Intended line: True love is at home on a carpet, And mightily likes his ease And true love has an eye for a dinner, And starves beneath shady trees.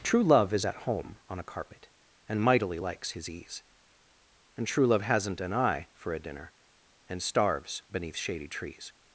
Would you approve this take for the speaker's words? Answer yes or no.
no